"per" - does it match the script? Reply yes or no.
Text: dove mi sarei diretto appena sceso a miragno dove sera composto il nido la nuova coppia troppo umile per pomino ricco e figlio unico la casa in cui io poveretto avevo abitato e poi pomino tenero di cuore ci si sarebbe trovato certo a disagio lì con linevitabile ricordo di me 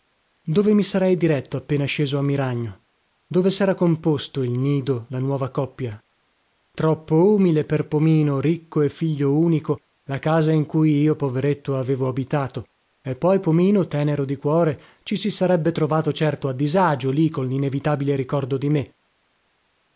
yes